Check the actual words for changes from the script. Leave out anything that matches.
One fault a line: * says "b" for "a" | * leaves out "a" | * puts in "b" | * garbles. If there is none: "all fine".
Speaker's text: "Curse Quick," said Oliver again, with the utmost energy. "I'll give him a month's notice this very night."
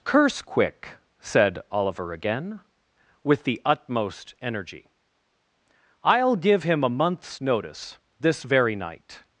all fine